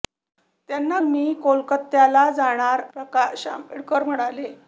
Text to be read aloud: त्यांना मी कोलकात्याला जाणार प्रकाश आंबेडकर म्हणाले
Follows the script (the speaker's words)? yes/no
yes